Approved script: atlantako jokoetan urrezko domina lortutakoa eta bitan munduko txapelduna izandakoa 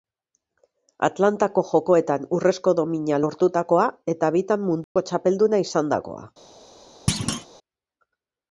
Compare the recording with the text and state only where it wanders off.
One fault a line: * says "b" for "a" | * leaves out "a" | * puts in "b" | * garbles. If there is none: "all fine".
all fine